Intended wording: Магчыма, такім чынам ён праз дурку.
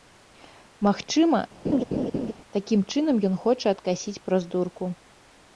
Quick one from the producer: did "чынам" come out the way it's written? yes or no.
yes